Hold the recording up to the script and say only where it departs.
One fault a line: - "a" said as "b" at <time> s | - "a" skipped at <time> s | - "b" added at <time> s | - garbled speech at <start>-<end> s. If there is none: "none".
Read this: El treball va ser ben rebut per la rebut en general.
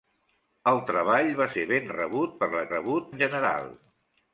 none